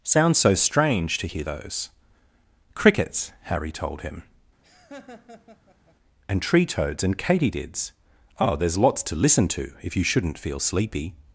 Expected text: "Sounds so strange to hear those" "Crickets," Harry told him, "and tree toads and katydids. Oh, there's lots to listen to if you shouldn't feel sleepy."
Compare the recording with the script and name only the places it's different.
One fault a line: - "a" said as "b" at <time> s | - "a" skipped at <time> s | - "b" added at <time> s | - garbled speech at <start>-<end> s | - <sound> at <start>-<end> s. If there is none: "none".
- laugh at 4.6-6.0 s